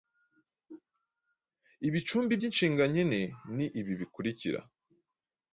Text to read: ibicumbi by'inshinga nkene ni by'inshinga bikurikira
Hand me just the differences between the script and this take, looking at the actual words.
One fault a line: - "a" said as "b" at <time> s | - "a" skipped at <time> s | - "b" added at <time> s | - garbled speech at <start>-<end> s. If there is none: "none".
- "by'inshinga" said as "ibi" at 3.8 s